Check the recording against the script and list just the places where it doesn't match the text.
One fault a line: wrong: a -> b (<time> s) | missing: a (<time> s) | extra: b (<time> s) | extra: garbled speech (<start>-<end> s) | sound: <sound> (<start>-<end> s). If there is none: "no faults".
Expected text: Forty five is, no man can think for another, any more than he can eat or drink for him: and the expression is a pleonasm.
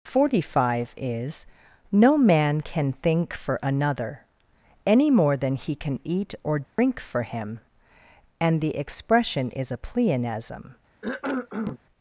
sound: dropout (6.6-6.8 s)
sound: cough (11.0-11.8 s)